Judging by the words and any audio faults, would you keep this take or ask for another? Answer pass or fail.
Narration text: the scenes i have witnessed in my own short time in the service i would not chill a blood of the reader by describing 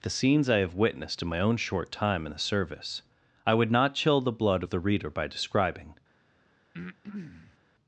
fail